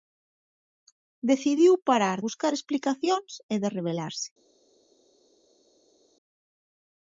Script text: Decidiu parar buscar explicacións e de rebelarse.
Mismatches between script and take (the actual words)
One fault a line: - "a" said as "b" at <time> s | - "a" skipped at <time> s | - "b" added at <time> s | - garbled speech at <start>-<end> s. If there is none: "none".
none